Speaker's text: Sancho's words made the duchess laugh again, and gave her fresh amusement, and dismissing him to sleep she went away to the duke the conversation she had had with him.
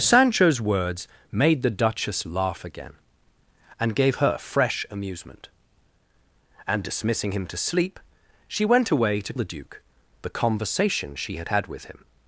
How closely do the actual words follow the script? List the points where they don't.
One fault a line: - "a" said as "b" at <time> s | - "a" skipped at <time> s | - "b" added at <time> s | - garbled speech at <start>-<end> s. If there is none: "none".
none